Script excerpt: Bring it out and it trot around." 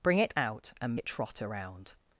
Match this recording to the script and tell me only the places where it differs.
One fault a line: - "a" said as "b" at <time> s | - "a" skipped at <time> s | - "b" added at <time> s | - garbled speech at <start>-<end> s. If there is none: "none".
none